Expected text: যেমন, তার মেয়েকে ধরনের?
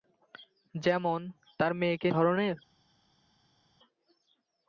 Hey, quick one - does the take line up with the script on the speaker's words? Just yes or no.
yes